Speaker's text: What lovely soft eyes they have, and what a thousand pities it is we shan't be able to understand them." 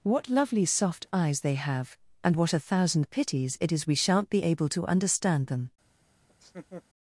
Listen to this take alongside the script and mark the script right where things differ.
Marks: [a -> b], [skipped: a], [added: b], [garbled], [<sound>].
What lovely soft eyes they have, and what a thousand pities it is we shan't be able to understand them." [laugh]